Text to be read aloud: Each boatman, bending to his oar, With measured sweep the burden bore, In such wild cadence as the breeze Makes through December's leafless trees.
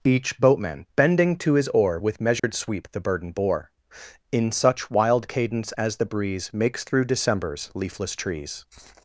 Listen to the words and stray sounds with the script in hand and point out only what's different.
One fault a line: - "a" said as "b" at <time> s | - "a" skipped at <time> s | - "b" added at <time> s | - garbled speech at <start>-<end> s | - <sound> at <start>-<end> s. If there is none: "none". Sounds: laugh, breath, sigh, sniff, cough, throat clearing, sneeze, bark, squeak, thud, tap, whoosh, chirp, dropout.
- dropout at 2.4-2.4 s